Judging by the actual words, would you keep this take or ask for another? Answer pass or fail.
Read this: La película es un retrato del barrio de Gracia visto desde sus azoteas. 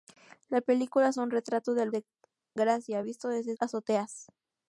fail